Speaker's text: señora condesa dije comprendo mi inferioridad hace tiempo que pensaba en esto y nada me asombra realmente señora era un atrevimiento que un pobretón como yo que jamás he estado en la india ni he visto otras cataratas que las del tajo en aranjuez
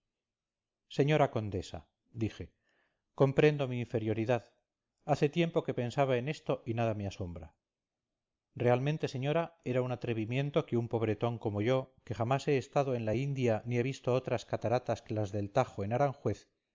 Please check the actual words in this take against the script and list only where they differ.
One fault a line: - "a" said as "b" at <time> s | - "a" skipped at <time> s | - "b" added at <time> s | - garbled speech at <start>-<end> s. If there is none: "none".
none